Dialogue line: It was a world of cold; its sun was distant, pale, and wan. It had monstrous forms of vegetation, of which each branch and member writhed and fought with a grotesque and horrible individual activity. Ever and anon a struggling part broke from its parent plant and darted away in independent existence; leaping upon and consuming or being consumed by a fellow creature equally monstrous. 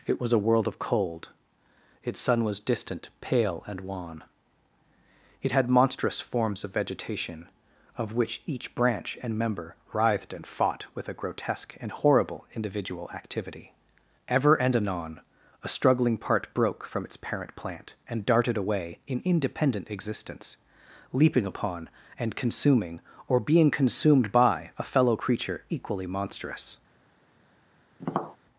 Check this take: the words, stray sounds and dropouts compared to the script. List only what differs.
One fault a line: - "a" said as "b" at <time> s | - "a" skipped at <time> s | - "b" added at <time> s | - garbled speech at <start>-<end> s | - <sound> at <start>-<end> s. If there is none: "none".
- tap at 28.0-28.4 s